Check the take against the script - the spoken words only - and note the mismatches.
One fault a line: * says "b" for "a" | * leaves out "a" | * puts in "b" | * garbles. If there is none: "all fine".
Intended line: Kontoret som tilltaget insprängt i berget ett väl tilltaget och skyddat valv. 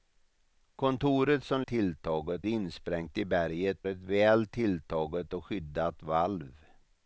all fine